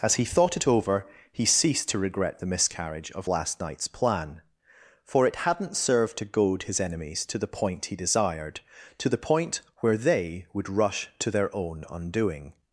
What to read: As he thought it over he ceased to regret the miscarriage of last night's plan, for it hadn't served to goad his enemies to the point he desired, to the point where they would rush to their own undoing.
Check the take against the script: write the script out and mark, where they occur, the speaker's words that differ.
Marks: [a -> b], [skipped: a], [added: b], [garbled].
As he thought it over he ceased to regret the miscarriage of last night's plan, for it hadn't served to goad his enemies to the point he desired, to the point where they would rush to their own undoing.